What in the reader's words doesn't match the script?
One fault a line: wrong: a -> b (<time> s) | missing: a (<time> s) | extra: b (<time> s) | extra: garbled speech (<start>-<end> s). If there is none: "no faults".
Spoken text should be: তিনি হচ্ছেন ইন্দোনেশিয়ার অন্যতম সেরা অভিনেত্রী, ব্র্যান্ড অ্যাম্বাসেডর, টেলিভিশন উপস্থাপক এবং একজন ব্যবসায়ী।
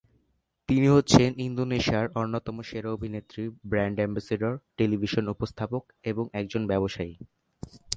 no faults